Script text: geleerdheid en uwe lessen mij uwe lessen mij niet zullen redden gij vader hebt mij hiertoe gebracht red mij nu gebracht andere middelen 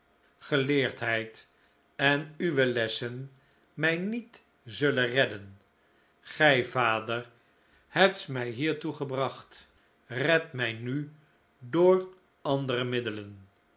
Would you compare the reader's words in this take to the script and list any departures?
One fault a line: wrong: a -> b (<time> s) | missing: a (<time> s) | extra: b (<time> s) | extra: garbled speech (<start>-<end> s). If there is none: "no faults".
missing: uwe lessen mij (4.0 s)
wrong: gebracht -> door (11.6 s)